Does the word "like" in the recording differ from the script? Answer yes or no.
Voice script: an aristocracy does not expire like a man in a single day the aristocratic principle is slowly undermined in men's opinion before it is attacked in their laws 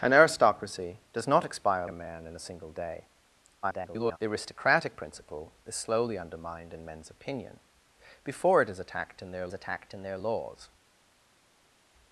yes